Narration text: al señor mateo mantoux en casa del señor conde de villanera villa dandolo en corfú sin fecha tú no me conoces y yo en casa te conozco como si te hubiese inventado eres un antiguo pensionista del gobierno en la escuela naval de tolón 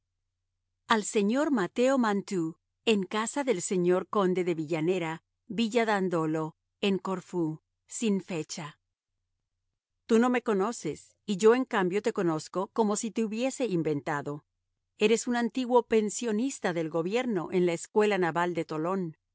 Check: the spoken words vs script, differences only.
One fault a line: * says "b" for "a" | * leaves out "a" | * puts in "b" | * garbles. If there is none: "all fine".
* says "cambio" for "casa"